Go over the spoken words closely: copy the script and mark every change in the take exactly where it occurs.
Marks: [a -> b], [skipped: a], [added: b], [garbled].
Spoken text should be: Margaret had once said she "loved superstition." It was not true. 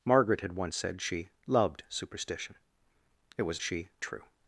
Margaret had once said she "loved superstition." It was [not -> she] true.